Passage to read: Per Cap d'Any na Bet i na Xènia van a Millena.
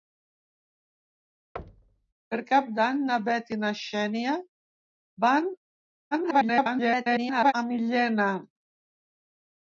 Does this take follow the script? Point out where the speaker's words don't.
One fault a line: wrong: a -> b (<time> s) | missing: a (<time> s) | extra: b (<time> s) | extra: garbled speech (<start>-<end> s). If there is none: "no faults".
extra: garbled speech (6.1-7.5 s)